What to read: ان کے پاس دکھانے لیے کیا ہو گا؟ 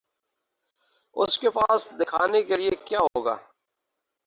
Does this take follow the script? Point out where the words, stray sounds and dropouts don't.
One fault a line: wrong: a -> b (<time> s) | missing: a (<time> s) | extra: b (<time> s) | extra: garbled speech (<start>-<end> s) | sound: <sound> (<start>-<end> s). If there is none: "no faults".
wrong: ان -> اس (1.1 s)
extra: کے (2.4 s)
sound: dropout (3.1-3.1 s)